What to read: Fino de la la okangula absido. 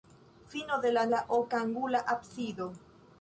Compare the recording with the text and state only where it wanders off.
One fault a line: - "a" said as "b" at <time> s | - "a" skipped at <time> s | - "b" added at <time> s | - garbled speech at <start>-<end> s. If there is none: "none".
none